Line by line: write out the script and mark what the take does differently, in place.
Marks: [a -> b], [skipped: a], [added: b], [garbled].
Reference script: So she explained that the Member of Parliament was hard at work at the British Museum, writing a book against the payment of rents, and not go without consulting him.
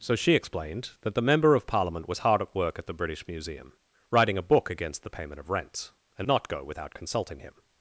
So she explained that the Member of Parliament was hard at work at the British Museum, writing a book against the payment of rents, and not go without consulting him.